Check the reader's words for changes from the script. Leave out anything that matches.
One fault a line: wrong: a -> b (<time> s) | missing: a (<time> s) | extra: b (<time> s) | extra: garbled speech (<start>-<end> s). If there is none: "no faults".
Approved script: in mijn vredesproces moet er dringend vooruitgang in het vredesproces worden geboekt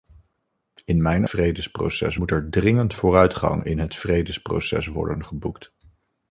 no faults